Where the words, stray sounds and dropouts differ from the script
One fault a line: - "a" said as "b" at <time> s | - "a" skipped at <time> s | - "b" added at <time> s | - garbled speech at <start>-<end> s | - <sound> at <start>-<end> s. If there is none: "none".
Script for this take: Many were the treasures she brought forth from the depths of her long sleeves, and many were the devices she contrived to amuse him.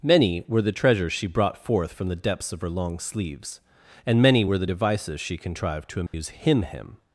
- dropout at 6.1-6.1 s
- "him" added at 6.6 s